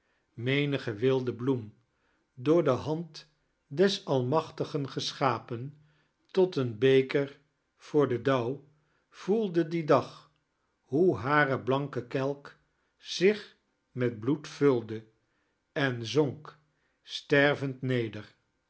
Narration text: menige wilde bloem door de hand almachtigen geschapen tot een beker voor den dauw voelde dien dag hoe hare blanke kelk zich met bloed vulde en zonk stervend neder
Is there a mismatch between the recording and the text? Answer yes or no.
yes